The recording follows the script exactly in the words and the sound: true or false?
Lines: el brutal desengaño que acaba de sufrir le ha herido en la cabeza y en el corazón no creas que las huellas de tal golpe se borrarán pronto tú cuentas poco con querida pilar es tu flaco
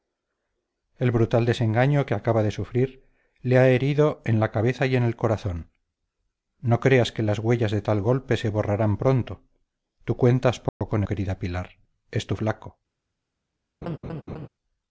false